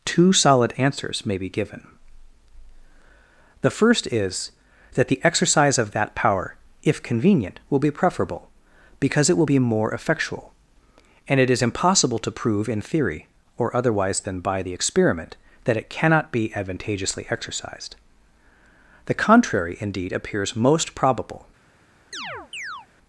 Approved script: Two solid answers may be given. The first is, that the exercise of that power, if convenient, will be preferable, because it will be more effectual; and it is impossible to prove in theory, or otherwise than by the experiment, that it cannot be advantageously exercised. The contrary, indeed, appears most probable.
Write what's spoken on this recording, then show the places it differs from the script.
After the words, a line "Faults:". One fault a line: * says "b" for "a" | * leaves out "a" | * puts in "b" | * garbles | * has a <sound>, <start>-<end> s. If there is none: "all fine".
Two solid answers may be given. The first is, that the exercise of that power, if convenient, will be preferable, because it will be more effectual; and it is impossible to prove in theory, or otherwise than by the experiment, that it cannot be advantageously exercised. The contrary, indeed, appears most probable.
Faults:
* has a chirp, 22.1-22.9 s